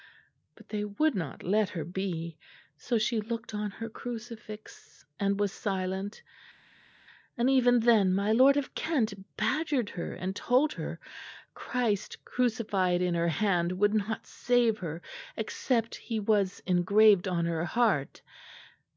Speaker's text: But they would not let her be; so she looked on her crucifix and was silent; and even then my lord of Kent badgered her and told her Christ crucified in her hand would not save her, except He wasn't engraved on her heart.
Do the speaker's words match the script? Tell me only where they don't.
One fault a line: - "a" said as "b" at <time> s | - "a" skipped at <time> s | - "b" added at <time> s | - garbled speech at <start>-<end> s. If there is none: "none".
- "wasn't" said as "was" at 16.2 s